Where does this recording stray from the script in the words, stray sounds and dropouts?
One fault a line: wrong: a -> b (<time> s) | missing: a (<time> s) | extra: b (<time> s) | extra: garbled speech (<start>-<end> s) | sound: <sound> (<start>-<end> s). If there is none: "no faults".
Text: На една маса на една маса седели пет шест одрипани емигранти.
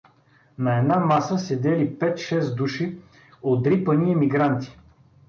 missing: на една маса (1.4 s)
extra: души (2.6 s)